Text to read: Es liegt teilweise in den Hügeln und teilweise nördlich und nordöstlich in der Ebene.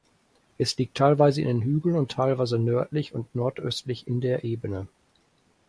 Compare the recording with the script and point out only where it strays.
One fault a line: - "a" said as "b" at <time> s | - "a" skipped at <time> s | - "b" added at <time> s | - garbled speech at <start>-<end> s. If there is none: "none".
none